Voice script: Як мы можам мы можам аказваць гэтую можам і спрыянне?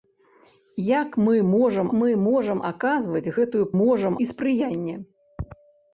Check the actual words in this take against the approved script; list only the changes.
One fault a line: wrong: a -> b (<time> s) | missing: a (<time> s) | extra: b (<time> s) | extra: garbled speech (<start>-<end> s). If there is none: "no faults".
no faults